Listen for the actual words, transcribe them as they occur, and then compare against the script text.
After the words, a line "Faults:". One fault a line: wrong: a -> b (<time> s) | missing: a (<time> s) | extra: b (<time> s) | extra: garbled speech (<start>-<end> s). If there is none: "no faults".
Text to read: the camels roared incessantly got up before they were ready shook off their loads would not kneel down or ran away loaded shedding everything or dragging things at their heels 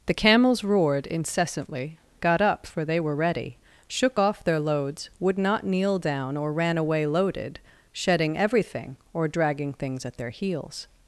the camels roared incessantly got up for they were ready shook off their loads would not kneel down or ran away loaded shedding everything or dragging things at their heels
Faults:
wrong: before -> for (2.7 s)